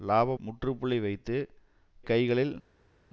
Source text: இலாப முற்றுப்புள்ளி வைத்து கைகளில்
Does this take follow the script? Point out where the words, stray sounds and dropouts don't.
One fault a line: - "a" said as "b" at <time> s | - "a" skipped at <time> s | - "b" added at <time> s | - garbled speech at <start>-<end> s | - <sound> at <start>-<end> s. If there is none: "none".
none